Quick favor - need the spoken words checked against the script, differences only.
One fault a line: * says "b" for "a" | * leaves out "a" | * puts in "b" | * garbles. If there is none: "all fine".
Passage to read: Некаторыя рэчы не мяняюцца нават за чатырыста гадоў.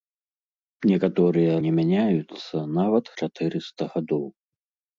* leaves out "рэчы"
* leaves out "за"